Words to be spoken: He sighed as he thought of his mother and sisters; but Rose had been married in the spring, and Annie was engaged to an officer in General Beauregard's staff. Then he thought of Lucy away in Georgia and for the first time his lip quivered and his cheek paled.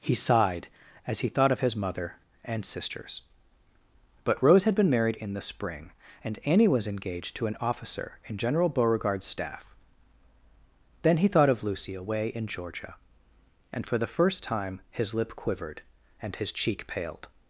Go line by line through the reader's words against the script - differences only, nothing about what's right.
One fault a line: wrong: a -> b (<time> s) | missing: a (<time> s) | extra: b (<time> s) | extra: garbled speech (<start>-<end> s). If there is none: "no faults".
no faults